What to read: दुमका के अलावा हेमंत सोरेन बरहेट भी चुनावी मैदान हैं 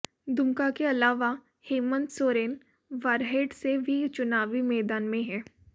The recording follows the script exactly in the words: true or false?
false